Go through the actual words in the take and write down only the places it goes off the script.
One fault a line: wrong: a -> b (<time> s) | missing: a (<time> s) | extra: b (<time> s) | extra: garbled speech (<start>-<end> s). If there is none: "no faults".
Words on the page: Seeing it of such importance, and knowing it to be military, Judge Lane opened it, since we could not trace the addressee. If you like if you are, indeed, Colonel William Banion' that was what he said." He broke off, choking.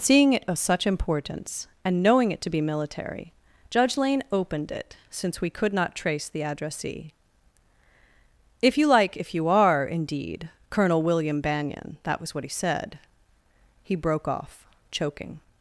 no faults